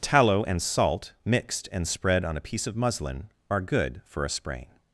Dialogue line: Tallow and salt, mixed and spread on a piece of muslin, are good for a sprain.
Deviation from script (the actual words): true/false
false